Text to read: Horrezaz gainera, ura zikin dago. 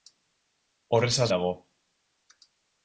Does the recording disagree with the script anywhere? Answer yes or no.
yes